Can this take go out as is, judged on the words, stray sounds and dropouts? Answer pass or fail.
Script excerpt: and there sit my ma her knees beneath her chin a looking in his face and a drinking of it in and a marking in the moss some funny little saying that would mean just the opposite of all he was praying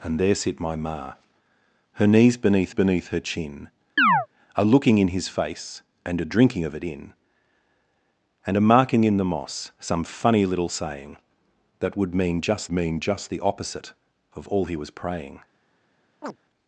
fail